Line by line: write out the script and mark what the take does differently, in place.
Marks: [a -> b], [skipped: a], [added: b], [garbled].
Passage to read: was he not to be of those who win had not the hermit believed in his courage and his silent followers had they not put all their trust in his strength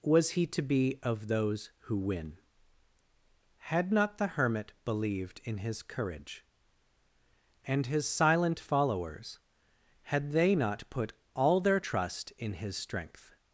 was he [skipped: not] to be of those who win had not the hermit believed in his courage and his silent followers had they not put all their trust in his strength